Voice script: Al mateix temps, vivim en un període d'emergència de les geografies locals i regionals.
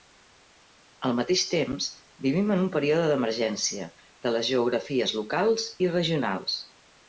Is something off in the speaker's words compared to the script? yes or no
no